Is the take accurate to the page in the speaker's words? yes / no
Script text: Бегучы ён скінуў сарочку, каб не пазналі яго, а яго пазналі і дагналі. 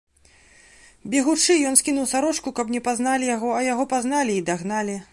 yes